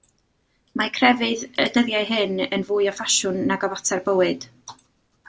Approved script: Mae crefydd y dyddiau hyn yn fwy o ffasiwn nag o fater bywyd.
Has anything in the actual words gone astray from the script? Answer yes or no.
no